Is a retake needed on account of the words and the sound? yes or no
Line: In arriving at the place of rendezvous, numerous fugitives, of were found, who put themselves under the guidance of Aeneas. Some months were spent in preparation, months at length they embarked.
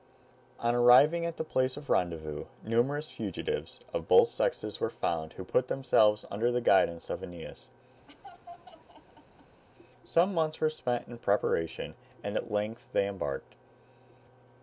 yes